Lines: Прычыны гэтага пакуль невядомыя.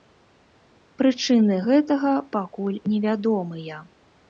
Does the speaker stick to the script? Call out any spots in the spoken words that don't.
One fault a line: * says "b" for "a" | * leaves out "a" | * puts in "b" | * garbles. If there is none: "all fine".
all fine